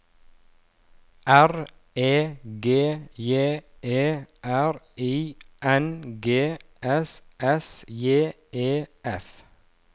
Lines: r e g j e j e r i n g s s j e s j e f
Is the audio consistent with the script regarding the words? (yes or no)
no